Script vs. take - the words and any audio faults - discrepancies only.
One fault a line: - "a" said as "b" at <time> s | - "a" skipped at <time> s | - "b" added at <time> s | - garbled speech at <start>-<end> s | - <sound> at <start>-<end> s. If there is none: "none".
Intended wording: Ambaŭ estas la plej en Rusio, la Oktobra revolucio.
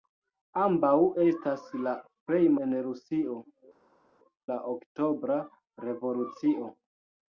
none